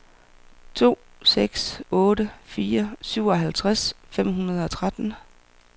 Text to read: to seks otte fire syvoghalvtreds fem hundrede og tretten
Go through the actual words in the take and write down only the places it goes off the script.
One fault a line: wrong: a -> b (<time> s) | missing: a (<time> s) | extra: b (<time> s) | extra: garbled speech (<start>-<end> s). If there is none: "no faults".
no faults